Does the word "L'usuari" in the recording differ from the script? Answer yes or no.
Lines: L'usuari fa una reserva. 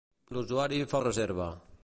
no